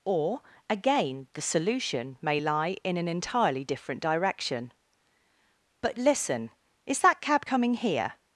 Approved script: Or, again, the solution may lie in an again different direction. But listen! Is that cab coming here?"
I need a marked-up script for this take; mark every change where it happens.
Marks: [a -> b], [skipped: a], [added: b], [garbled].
Or, again, the solution may lie in an [again -> entirely] different direction. But listen! Is that cab coming here?"